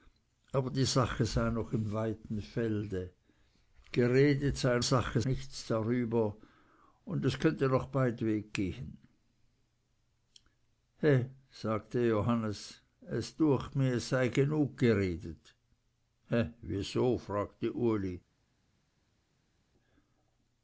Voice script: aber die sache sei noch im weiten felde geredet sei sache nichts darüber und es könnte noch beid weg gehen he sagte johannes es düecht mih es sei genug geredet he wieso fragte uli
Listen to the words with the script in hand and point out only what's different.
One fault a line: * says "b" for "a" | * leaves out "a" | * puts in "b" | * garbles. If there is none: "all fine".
all fine